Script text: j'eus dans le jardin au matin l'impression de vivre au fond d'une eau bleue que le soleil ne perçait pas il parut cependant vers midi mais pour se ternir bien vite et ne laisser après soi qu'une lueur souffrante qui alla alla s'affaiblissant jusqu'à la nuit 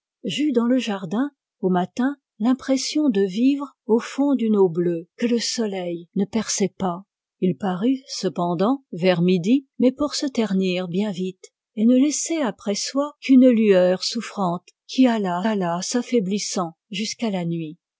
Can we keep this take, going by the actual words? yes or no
yes